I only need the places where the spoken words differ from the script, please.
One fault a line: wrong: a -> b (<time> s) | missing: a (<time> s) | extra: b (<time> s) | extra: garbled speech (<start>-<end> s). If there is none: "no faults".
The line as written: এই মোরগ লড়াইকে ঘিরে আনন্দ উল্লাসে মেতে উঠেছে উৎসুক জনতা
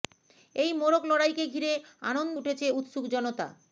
missing: উল্লাসে মেতে (2.4 s)